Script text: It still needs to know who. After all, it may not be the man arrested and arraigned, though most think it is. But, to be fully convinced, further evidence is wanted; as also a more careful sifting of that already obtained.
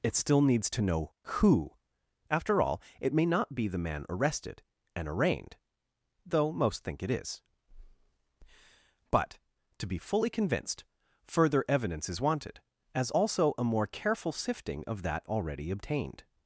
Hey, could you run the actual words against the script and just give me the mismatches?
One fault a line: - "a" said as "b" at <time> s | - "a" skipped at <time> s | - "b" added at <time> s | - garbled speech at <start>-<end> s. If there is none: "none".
none